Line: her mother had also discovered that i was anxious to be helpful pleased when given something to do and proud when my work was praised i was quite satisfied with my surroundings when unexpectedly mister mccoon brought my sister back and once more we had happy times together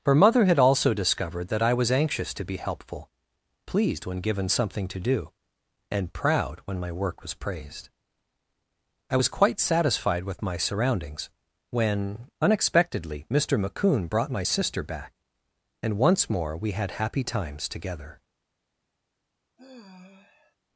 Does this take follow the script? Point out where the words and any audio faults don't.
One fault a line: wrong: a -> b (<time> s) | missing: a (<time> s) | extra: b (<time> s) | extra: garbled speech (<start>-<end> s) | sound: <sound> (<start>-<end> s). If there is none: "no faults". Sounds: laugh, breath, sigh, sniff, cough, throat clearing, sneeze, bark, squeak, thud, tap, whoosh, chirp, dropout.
sound: sigh (19.6-20.6 s)